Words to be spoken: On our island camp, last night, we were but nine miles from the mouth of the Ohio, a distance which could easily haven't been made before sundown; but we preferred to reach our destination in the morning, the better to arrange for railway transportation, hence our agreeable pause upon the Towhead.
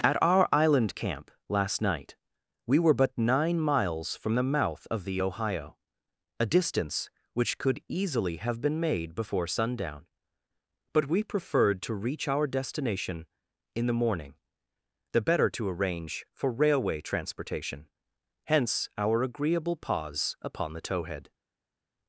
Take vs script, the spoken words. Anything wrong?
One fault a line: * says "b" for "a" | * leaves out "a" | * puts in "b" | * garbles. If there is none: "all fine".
* says "At" for "On"
* says "have" for "haven't"